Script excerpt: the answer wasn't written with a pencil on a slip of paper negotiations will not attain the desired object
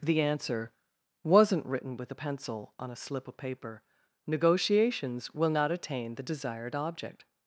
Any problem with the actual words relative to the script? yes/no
no